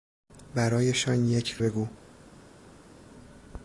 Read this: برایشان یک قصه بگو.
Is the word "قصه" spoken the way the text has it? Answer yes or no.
no